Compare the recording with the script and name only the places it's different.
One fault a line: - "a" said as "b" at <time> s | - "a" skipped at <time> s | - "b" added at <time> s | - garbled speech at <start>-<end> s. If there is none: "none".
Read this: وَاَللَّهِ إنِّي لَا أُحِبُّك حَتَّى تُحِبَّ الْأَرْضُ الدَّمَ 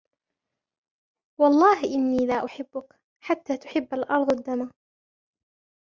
none